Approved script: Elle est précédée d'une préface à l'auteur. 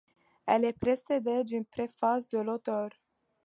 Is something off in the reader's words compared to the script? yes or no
yes